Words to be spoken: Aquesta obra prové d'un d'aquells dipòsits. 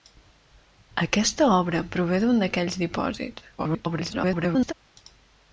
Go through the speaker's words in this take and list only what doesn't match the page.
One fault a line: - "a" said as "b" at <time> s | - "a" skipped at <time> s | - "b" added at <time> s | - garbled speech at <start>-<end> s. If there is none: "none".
- garbled speech at 3.6-4.7 s